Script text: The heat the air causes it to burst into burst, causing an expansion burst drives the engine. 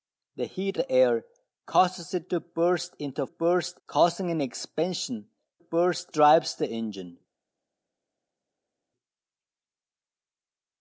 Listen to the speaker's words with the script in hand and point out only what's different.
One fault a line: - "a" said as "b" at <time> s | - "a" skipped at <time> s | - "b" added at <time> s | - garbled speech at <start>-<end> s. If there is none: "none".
none